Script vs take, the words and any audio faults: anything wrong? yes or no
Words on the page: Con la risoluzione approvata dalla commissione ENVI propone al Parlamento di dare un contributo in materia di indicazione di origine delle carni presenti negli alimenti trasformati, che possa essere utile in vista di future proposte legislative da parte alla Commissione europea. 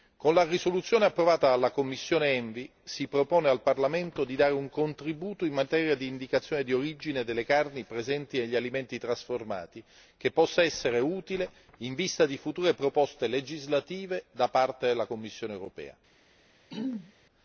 yes